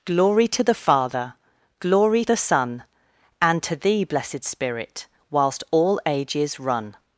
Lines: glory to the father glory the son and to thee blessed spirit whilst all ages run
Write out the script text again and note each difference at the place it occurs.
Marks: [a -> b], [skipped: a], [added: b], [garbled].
glory to the father glory the son and to thee blessed spirit whilst all ages run